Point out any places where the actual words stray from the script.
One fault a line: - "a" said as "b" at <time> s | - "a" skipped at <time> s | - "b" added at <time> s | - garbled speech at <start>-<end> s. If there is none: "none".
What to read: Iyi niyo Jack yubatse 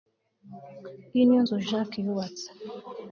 - "nzu" added at 1.4 s